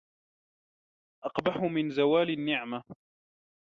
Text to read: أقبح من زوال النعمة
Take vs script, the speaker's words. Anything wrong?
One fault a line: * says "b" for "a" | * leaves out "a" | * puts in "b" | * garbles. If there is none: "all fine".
all fine